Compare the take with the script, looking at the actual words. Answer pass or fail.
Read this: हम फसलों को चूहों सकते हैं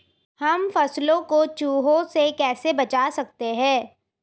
fail